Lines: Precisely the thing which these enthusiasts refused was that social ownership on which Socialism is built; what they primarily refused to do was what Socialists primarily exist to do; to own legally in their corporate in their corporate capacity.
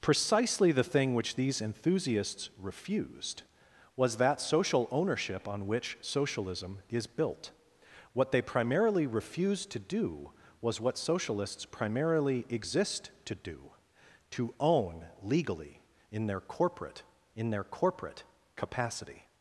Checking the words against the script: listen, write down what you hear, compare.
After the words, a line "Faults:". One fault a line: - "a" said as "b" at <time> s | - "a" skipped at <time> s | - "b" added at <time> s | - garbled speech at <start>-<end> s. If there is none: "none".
Precisely the thing which these enthusiasts refused was that social ownership on which Socialism is built; what they primarily refused to do was what Socialists primarily exist to do; to own legally in their corporate in their corporate capacity.
Faults:
none